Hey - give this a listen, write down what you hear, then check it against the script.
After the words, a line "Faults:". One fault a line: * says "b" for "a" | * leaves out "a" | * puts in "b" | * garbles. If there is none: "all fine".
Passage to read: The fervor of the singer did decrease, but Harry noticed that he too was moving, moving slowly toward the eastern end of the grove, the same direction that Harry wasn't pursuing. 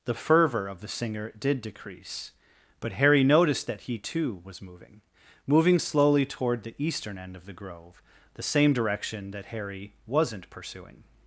The fervor of the singer did decrease, but Harry noticed that he too was moving, moving slowly toward the eastern end of the grove, the same direction that Harry wasn't pursuing.
Faults:
all fine